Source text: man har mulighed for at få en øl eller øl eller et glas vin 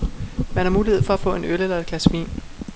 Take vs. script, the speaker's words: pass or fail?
fail